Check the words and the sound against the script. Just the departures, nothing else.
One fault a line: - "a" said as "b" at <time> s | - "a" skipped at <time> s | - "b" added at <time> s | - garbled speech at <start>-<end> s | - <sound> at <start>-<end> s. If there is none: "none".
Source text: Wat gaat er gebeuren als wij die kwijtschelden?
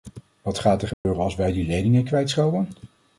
- dropout at 0.9-1.0 s
- "leningen" added at 1.7 s